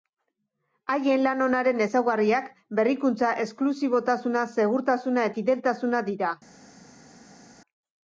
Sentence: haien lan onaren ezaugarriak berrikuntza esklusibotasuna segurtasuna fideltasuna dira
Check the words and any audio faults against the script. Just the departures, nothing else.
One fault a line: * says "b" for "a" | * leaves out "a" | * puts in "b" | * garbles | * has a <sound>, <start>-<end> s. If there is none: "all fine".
all fine